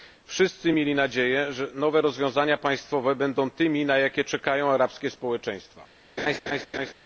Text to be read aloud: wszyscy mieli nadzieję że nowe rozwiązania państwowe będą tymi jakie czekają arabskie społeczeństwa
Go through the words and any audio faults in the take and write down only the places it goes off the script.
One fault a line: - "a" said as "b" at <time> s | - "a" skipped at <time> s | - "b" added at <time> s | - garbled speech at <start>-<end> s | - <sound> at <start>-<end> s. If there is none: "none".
- "na" added at 3.9 s
- laugh at 6.2-6.9 s